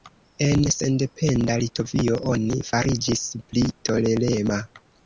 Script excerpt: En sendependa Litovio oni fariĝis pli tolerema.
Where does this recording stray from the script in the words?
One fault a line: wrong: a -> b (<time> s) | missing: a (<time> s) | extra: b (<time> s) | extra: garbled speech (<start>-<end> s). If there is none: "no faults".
no faults